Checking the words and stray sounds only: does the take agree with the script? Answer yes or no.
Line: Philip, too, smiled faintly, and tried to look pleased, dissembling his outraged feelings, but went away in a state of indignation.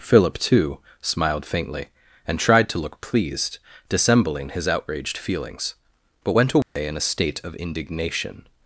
no